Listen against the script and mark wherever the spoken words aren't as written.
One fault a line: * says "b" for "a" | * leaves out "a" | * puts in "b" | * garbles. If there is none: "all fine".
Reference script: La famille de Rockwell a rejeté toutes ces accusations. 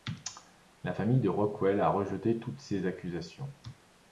all fine